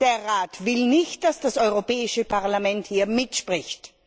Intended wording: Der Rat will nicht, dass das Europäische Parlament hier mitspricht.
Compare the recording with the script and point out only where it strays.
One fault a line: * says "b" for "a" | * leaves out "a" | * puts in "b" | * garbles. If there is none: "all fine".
all fine